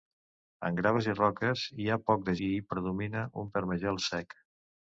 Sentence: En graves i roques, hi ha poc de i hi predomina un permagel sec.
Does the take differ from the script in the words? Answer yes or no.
no